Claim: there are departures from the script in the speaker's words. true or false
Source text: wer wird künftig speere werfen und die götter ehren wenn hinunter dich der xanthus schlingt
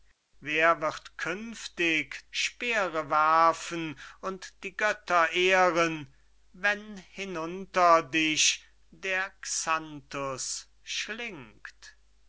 false